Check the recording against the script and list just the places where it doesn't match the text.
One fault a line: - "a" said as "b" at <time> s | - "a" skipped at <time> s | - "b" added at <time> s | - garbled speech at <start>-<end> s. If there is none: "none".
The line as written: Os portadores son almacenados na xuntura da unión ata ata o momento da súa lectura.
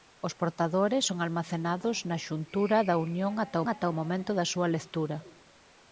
none